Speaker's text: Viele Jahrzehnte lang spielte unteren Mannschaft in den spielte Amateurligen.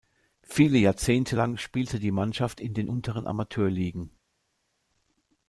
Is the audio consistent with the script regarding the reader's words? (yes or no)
no